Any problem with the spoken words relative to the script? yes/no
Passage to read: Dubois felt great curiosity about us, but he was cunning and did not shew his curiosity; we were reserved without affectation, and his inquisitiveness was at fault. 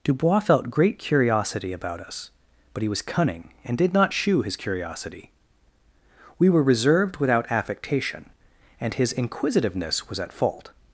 no